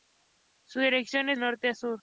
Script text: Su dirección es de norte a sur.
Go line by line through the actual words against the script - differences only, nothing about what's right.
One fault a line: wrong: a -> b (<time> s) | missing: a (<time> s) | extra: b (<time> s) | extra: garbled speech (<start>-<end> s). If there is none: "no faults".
missing: de (1.4 s)